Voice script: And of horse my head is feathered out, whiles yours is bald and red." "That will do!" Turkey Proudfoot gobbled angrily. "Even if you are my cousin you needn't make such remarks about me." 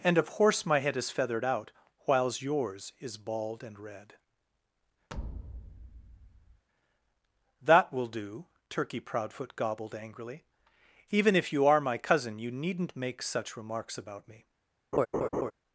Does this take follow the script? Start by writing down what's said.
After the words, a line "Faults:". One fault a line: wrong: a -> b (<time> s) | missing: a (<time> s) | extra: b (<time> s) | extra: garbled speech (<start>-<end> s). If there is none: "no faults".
And of horse my head is feathered out, whiles yours is bald and red." "That will do!" Turkey Proudfoot gobbled angrily. "Even if you are my cousin you needn't make such remarks about me."
Faults:
no faults